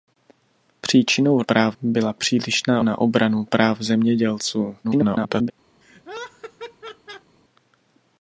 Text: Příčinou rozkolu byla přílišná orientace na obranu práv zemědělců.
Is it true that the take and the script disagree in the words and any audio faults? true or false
true